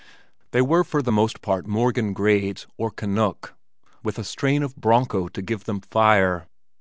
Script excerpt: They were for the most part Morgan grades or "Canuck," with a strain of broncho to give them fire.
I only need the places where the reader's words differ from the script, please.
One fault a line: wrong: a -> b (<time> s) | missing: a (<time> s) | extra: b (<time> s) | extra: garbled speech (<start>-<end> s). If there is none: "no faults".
no faults